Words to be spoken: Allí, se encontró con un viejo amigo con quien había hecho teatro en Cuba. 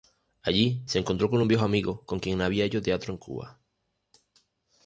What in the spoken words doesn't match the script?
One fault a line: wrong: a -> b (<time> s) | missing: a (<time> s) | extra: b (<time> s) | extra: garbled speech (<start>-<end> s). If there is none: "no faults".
no faults